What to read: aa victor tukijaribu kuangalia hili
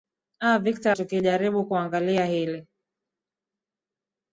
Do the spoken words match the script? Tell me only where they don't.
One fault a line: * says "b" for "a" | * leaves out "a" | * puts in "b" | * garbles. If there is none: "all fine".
all fine